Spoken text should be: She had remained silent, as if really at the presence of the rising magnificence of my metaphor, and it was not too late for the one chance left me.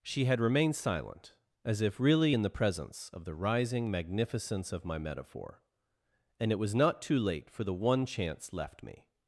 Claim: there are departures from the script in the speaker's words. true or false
true